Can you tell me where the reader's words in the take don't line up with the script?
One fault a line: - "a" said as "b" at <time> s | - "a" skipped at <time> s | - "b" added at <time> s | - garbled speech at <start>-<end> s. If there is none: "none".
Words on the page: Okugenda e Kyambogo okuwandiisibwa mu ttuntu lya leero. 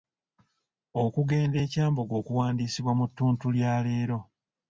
none